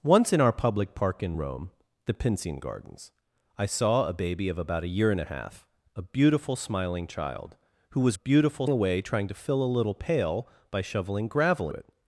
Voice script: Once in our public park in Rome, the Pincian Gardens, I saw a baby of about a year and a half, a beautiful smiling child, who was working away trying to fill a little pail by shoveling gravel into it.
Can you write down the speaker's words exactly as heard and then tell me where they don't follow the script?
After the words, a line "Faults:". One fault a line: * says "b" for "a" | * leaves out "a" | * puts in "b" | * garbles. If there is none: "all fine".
Once in our public park in Rome, the Pincian Gardens, I saw a baby of about a year and a half, a beautiful smiling child, who was beautiful away trying to fill a little pail by shoveling gravel it.
Faults:
* says "beautiful" for "working"
* leaves out "into"